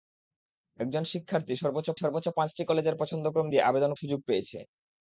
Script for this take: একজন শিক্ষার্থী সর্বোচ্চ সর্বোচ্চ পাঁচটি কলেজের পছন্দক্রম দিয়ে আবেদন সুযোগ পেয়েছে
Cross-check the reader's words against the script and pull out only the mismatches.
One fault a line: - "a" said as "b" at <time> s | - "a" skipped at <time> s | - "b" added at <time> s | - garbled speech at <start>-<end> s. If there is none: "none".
none